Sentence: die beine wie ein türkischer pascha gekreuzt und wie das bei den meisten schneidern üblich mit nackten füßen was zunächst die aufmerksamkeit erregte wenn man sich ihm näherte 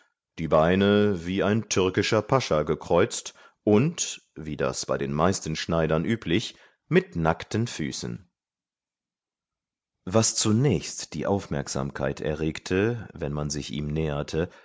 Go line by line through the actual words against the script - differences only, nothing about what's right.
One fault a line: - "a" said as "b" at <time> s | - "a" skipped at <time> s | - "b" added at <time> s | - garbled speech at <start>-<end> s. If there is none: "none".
none